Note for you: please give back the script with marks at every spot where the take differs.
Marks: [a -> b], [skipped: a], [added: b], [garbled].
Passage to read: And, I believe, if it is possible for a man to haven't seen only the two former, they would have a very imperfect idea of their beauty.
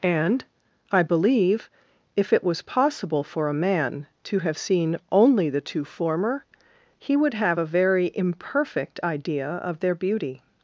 And, I believe, if it [is -> was] possible for a man to [haven't -> have] seen only the two former, [they -> he] would have a very imperfect idea of their beauty.